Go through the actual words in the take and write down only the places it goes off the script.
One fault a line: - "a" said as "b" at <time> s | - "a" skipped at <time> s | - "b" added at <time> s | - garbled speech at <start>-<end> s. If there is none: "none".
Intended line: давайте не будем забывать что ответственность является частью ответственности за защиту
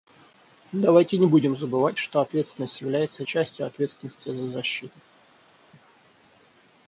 none